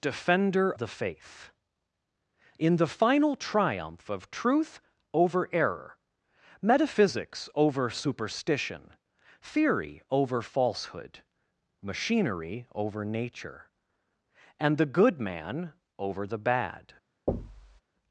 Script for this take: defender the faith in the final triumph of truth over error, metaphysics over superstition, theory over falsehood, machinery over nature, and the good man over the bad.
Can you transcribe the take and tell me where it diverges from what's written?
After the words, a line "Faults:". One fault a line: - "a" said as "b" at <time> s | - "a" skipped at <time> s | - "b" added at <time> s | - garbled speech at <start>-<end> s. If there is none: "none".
defender the faith in the final triumph of truth over error, metaphysics over superstition, theory over falsehood, machinery over nature, and the good man over the bad.
Faults:
none